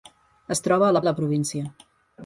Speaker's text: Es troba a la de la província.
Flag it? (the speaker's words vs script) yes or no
no